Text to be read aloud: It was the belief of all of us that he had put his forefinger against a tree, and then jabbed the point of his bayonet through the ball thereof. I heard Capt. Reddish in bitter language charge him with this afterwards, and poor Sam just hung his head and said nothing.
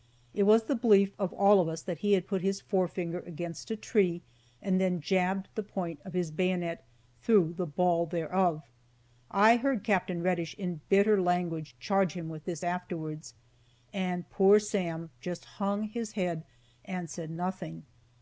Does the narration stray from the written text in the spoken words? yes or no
no